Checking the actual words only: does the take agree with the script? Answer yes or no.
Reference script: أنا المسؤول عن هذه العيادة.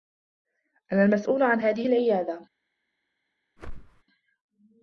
yes